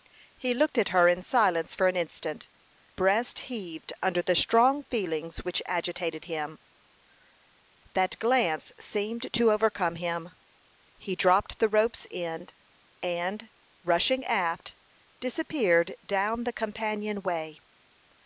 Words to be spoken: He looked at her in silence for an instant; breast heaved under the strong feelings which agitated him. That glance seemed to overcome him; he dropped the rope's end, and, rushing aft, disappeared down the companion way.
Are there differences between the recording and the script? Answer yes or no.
no